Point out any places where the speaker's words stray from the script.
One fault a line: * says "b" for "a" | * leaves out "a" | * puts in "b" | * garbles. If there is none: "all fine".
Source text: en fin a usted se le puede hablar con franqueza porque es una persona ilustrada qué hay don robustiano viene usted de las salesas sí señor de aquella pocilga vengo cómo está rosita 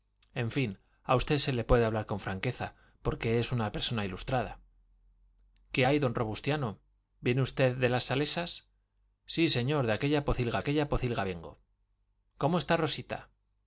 * puts in "aquella pocilga"